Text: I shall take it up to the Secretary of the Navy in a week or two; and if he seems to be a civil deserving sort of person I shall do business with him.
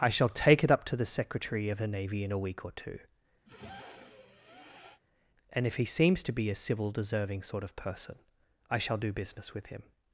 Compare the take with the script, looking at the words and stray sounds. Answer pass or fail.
fail